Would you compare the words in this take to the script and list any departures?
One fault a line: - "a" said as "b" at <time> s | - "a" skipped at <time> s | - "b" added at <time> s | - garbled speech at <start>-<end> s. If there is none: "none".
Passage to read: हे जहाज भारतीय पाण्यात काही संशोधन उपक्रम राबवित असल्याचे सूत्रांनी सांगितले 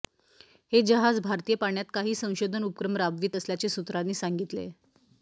none